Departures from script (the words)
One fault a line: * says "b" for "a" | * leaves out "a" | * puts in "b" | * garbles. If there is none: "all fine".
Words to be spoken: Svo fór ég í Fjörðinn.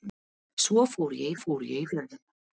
* puts in "fór ég"